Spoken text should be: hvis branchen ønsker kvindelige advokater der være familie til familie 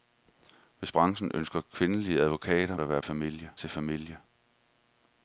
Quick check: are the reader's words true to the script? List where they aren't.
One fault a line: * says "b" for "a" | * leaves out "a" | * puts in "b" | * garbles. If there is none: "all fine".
all fine